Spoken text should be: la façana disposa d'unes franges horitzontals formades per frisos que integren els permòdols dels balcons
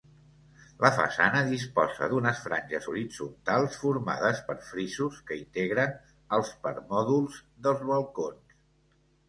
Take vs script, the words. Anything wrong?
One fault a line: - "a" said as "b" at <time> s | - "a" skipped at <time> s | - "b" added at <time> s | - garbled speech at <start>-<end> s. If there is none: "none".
none